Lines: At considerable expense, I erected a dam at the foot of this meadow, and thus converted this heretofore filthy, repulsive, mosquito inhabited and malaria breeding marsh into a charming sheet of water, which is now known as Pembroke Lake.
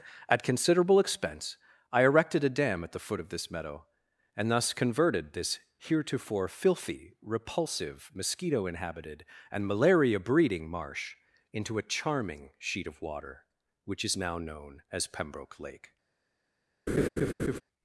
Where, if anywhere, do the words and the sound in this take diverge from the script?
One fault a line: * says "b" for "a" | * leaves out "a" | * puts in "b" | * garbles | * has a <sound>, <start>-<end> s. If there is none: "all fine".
* has a laugh, 16.9-17.6 s